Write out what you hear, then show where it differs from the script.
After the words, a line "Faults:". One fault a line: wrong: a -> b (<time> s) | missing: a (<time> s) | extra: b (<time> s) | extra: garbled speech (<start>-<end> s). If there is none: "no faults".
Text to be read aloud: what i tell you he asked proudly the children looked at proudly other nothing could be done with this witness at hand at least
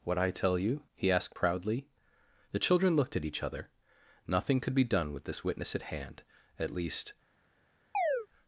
what i tell you he asked proudly the children looked at each other nothing could be done with this witness at hand at least
Faults:
wrong: proudly -> each (3.2 s)